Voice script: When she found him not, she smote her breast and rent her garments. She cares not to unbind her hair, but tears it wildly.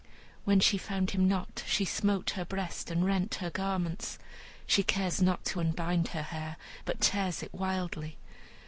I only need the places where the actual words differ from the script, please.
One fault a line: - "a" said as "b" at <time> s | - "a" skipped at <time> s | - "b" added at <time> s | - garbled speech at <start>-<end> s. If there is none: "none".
none